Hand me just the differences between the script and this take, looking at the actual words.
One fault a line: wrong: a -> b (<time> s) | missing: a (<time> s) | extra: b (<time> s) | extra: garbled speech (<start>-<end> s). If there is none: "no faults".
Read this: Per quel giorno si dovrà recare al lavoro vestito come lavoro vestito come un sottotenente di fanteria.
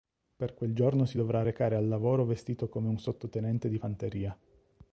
missing: lavoro vestito come (2.9 s)